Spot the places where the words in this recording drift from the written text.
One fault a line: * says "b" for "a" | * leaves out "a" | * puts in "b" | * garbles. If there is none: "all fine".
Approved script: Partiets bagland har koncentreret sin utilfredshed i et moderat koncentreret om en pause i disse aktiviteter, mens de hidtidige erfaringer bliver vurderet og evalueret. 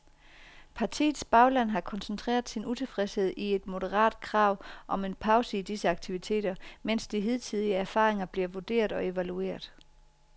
* says "krav" for "koncentreret"